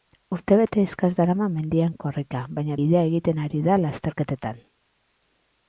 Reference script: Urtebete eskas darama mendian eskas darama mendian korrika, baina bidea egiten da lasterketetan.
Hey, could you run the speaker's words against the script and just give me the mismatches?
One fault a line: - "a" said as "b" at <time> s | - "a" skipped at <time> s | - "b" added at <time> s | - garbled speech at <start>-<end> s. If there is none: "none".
- "eskas darama mendian" skipped at 1.9 s
- "ari" added at 3.5 s